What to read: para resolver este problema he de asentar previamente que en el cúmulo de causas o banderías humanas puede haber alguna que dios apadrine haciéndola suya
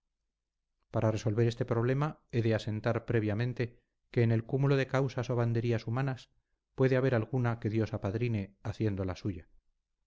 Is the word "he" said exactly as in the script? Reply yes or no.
yes